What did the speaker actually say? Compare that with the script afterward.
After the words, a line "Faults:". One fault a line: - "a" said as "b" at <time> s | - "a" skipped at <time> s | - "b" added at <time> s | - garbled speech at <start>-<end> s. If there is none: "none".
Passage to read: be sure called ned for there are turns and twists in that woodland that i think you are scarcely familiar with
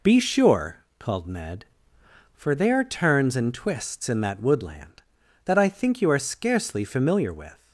be sure called ned for there are turns and twists in that woodland that i think you are scarcely familiar with
Faults:
none